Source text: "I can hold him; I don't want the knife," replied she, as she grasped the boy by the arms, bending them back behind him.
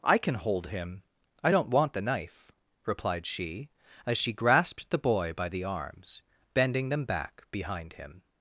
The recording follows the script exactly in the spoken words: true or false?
true